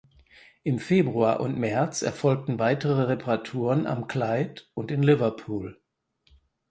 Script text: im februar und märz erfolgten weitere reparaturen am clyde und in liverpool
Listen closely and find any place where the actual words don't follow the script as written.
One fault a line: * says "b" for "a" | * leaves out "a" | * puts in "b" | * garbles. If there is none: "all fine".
all fine